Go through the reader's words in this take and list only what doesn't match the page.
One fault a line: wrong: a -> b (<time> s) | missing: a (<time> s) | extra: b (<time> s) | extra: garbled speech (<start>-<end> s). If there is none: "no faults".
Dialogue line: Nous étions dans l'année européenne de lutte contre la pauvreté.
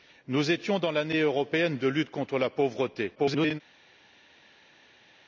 extra: garbled speech (3.1-3.6 s)